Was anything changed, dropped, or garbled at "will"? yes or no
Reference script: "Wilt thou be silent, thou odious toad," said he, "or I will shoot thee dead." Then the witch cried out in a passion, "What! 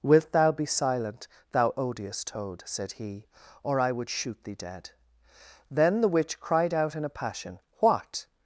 yes